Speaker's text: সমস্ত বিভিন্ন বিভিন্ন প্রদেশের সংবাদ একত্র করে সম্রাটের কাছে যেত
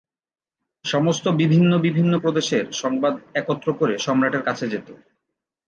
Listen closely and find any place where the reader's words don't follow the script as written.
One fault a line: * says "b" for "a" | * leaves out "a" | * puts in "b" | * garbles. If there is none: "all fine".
all fine